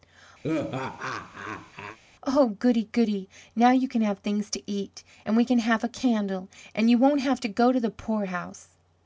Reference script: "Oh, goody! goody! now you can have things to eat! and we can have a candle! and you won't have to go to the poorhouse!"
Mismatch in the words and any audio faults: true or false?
true